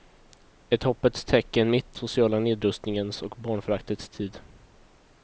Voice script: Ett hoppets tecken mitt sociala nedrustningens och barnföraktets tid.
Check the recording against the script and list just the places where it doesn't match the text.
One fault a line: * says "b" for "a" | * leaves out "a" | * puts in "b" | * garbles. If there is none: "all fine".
all fine